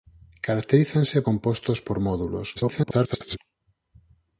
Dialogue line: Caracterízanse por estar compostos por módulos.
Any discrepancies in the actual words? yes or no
yes